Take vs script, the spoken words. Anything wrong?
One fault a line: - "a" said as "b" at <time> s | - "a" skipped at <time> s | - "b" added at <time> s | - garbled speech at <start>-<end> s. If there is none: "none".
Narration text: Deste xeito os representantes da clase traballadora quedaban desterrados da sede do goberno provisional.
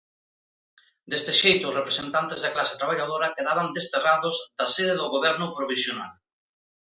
none